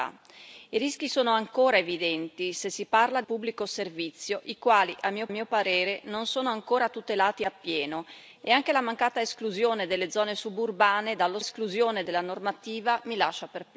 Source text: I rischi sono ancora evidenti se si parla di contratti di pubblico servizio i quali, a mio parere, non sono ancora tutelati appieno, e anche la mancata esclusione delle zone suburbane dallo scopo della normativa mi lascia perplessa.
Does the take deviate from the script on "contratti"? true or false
true